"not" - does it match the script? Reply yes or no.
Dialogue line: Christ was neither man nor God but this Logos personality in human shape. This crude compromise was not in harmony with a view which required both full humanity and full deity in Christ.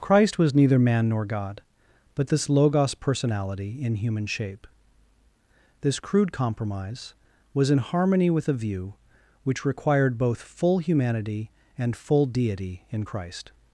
no